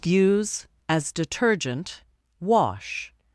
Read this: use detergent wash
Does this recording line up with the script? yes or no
no